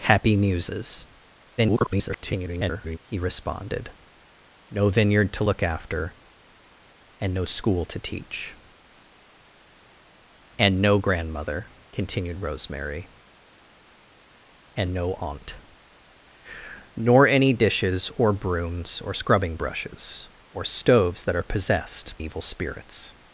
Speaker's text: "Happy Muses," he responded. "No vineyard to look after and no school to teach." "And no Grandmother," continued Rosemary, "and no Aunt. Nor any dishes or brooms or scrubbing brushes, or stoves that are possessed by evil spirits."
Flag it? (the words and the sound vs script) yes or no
yes